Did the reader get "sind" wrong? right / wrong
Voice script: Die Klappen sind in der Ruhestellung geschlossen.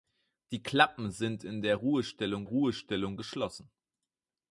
right